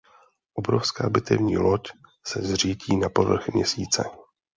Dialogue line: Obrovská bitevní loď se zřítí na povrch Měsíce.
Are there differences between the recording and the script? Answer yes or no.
no